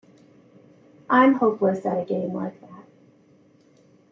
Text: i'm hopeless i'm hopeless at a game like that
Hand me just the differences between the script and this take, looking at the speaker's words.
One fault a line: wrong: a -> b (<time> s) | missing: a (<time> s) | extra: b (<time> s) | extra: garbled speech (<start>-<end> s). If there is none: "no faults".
missing: i'm hopeless (1.8 s)